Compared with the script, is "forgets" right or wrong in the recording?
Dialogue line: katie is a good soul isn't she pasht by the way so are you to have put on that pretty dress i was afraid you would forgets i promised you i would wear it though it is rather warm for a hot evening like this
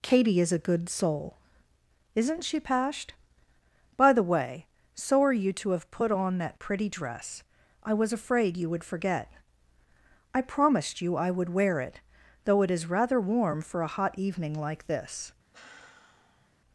wrong